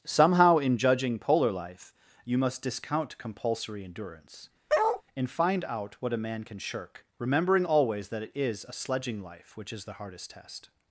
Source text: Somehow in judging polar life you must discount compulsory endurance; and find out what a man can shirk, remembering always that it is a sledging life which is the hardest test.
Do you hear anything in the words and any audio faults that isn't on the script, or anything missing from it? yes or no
yes